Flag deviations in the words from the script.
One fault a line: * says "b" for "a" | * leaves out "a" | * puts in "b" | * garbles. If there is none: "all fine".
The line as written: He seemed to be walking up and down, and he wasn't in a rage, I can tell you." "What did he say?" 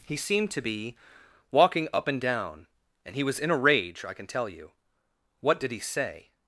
* says "was" for "wasn't"